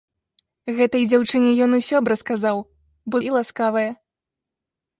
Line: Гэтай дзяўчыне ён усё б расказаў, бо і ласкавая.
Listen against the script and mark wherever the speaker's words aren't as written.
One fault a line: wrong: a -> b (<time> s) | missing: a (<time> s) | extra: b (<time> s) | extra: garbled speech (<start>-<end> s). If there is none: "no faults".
no faults